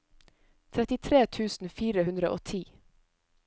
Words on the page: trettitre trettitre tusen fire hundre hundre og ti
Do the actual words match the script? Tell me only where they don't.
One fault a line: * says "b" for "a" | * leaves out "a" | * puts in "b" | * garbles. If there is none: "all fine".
* leaves out "trettitre"
* leaves out "hundre"